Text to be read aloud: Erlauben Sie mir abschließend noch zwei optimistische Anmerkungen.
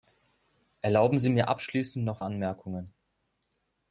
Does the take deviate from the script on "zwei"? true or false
true